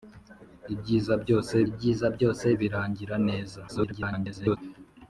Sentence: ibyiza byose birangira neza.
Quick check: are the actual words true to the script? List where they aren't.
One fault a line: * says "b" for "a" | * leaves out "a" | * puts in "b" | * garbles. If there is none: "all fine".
* puts in "ibyiza byose"
* garbles